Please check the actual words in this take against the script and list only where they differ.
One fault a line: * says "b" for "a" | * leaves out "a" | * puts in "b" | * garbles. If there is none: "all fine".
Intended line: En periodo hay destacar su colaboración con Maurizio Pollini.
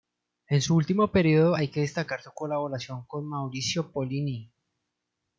* puts in "su último"
* puts in "que"